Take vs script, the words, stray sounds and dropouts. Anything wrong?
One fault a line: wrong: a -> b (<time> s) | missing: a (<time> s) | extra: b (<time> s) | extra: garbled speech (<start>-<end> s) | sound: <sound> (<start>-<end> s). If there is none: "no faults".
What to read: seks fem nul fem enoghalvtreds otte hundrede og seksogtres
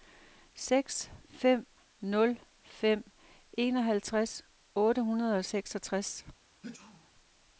sound: sneeze (6.6-7.1 s)